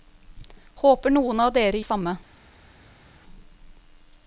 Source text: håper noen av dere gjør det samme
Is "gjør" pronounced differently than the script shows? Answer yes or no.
yes